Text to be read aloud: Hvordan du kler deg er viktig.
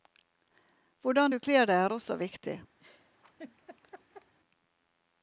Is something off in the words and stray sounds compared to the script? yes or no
yes